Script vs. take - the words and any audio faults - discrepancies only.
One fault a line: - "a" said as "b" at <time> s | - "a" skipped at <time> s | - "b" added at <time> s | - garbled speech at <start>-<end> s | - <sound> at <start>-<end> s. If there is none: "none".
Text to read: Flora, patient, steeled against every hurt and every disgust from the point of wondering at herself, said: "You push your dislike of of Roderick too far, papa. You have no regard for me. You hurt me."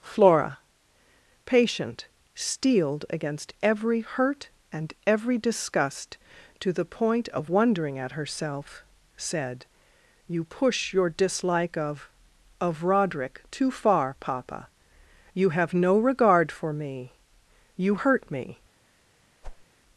- "from" said as "to" at 6.6 s
- whoosh at 19.4-19.7 s